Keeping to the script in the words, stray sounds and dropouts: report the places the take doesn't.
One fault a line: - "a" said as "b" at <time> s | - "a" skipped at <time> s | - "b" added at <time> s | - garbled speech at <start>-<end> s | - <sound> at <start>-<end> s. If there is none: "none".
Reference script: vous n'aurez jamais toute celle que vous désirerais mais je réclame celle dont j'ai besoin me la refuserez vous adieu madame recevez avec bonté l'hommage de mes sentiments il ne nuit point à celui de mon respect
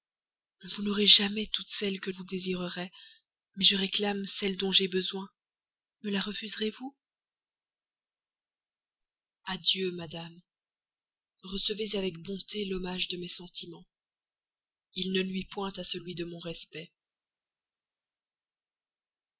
none